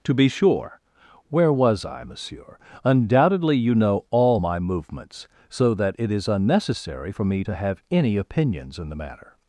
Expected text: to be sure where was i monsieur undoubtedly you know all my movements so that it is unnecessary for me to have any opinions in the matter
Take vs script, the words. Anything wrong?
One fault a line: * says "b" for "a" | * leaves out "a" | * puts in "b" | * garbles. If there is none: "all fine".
all fine